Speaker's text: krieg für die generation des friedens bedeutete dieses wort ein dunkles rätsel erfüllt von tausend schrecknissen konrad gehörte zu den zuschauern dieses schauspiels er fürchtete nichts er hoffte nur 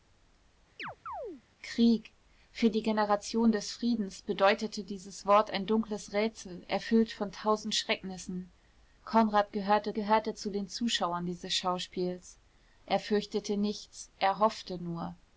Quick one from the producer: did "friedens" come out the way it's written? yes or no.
yes